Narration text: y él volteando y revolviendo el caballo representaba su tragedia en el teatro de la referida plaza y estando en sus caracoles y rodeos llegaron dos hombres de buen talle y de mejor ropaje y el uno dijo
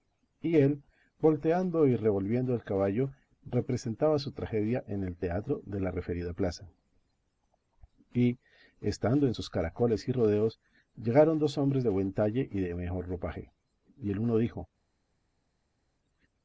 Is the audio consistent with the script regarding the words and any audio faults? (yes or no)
yes